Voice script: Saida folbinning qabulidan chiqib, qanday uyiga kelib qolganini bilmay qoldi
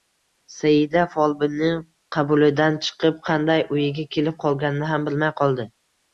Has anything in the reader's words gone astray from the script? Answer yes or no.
yes